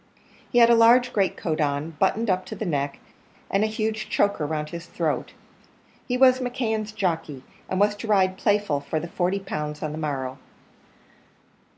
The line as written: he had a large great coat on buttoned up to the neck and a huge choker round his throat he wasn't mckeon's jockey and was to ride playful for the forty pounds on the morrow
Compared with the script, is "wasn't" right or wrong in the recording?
wrong